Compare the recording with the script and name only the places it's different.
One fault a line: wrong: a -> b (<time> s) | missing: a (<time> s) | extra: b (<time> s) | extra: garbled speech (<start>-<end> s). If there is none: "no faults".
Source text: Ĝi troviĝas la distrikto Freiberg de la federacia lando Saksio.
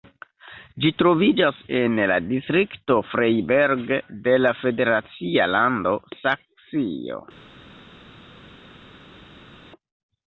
extra: en (1.8 s)